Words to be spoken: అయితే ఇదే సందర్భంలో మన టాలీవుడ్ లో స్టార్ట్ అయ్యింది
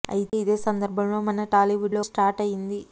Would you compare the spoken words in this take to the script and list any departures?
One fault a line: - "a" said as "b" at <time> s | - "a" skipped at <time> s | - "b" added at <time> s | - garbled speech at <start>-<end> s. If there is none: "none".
none